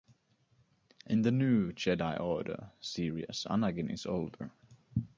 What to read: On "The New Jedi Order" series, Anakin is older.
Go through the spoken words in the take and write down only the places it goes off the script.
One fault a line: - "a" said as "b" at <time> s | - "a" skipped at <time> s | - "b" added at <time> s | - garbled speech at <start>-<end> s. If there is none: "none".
- "On" said as "In" at 1.1 s